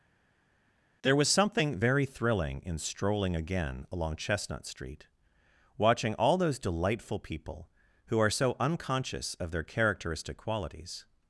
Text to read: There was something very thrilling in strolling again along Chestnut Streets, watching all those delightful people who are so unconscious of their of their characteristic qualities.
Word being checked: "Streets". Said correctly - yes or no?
no